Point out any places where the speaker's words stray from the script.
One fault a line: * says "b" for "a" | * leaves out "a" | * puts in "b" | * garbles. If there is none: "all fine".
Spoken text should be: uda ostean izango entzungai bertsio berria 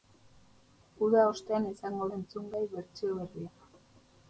all fine